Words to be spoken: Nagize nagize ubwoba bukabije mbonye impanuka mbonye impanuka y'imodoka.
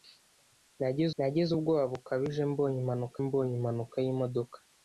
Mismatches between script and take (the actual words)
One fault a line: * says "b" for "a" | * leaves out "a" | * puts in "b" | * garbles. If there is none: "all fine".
all fine